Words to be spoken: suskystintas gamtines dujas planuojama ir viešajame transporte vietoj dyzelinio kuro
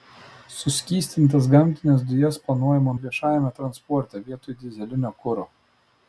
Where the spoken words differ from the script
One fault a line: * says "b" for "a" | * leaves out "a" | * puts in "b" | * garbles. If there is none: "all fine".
all fine